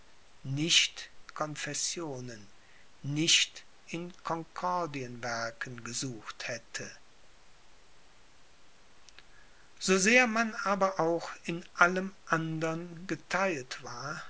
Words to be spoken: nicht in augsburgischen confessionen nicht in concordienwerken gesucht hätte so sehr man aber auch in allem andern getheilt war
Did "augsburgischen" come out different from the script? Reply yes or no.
yes